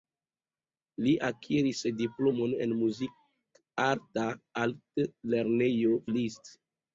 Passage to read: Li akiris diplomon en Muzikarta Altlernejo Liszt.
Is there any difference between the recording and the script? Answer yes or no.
no